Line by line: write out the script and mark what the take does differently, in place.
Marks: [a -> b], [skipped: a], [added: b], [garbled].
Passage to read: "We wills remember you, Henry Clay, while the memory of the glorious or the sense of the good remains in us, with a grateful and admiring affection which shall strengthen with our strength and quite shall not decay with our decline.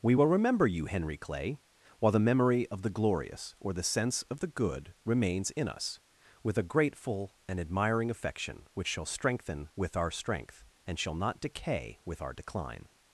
"We [wills -> will] remember you, Henry Clay, while the memory of the glorious or the sense of the good remains in us, with a grateful and admiring affection which shall strengthen with our strength and [skipped: quite] shall not decay with our decline.